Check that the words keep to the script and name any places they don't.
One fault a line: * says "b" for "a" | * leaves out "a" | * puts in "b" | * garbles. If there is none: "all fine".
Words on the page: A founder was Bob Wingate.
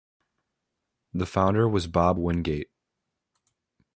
* says "The" for "A"